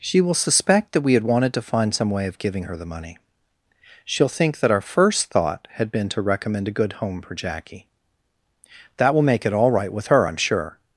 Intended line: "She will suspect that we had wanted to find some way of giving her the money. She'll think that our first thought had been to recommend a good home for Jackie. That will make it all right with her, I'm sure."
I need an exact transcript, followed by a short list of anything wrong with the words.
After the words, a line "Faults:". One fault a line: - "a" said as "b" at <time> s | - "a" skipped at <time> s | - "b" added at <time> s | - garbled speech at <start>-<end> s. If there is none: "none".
"She will suspect that we had wanted to find some way of giving her the money. She'll think that our first thought had been to recommend a good home for Jackie. That will make it all right with her, I'm sure."
Faults:
none